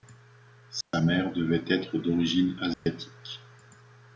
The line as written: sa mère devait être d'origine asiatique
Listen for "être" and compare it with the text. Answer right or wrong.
right